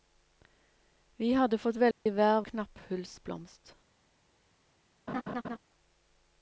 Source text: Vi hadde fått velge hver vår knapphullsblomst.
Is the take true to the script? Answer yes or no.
no